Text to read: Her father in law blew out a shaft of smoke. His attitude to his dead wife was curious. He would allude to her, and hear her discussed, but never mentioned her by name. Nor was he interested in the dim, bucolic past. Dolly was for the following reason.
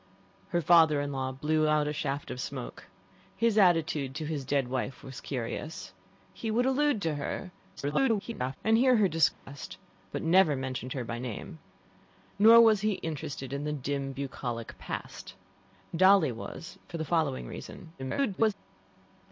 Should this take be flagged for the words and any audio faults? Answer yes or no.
yes